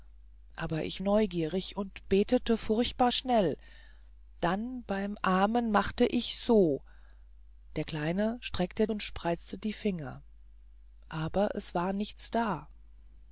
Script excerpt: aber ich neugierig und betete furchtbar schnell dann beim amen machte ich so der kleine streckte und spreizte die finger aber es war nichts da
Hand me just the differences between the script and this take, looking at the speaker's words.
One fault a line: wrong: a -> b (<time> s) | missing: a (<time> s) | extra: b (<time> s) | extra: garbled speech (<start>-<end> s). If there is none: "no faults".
no faults